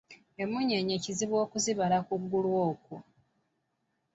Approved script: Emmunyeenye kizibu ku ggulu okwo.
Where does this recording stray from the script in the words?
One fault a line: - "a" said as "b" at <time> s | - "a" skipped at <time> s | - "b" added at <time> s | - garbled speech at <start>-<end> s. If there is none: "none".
- "okuzibala" added at 1.4 s